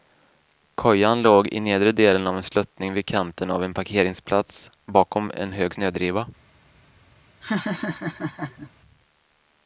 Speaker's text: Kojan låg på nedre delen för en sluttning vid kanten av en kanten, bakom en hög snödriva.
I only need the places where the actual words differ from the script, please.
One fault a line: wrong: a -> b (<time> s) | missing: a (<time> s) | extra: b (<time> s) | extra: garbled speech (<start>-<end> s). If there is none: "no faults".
wrong: på -> i (1.4 s)
wrong: för -> av (2.3 s)
wrong: kanten -> parkeringsplats (3.7 s)